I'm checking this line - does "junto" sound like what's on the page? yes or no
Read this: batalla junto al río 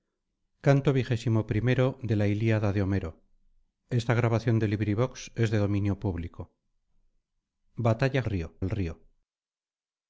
no